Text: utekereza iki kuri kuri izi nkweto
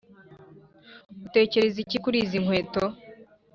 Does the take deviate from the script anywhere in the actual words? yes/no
yes